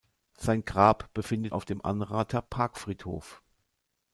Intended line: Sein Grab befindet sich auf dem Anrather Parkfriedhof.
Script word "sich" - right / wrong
wrong